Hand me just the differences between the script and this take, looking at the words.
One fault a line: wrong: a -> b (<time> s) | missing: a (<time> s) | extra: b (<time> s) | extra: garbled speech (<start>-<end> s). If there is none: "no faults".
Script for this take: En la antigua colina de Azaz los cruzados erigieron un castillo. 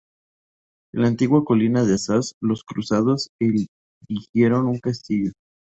no faults